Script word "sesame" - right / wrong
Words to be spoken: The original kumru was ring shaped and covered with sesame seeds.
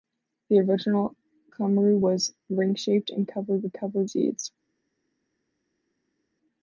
wrong